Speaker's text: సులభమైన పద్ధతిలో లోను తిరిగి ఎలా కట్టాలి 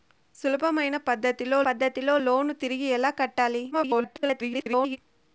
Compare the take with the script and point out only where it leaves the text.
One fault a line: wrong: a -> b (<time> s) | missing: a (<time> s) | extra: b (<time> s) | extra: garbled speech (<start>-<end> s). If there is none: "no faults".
extra: పద్ధతిలో (1.7 s)
extra: garbled speech (3.7-5.0 s)